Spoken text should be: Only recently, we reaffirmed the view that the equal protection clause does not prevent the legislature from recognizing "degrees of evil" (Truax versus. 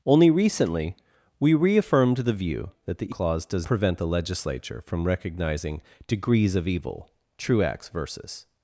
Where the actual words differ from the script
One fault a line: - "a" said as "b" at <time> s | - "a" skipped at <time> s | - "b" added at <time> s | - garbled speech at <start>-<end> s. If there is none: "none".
- "equal protection" skipped at 3.1 s
- "not" skipped at 3.7 s